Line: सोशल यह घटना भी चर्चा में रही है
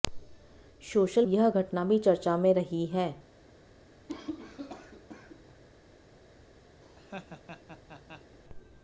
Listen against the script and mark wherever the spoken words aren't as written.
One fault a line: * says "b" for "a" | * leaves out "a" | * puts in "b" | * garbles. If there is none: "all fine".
all fine